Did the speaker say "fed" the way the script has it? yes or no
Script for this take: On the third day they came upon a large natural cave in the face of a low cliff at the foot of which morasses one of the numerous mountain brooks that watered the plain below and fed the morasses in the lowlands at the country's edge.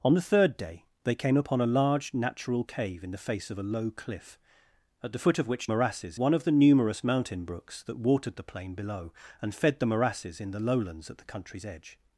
yes